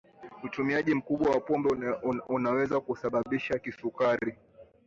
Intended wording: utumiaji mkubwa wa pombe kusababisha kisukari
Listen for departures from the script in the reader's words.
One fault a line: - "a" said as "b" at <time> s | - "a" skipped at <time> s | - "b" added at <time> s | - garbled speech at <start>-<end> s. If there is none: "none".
- "unaweza" added at 2.3 s